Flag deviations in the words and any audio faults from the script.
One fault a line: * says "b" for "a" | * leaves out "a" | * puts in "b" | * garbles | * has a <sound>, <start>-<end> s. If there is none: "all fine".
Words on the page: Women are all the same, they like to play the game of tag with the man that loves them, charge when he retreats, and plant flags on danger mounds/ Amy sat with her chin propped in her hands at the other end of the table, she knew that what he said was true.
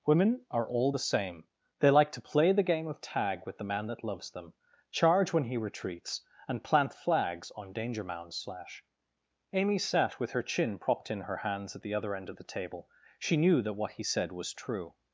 * puts in "slash"